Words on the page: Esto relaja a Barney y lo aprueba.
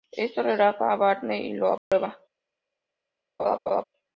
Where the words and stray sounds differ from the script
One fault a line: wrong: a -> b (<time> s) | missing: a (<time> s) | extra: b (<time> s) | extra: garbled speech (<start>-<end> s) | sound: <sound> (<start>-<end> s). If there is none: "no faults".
sound: dropout (1.8-1.9 s)
sound: laugh (3.4-3.8 s)